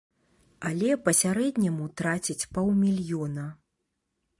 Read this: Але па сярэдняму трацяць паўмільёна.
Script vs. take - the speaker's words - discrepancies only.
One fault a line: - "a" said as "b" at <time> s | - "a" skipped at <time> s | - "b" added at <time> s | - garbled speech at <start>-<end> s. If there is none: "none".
none